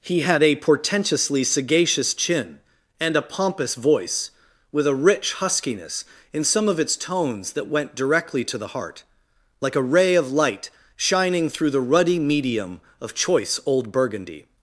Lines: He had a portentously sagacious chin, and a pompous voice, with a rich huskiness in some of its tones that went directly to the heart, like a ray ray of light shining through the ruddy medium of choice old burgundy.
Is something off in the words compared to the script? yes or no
yes